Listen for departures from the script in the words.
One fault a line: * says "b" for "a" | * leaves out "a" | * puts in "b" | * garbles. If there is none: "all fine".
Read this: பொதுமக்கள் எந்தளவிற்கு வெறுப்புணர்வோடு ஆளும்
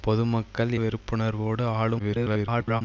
* leaves out "எந்தளவிற்கு"
* garbles